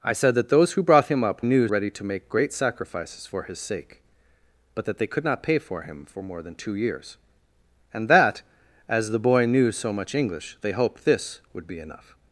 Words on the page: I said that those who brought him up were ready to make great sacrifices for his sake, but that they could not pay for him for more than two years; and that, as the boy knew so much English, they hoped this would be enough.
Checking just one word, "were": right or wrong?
wrong